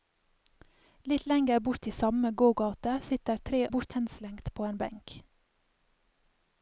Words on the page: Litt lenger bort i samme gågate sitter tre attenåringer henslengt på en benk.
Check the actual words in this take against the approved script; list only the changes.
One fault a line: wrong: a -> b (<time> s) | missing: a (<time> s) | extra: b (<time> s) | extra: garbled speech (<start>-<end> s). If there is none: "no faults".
wrong: attenåringer -> bort (3.7 s)